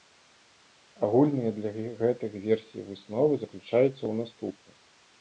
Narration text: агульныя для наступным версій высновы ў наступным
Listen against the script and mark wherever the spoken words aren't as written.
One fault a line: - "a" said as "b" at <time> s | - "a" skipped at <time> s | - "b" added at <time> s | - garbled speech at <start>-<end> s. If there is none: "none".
- "наступным" said as "гэтых" at 2.0 s
- "заключаюцца" added at 3.5 s